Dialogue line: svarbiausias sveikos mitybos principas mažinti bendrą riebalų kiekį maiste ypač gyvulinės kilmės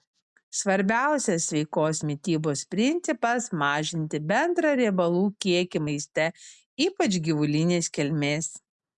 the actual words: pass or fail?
pass